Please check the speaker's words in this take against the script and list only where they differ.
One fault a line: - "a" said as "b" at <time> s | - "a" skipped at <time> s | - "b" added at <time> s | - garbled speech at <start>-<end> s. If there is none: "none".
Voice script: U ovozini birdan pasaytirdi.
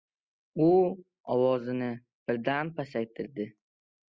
none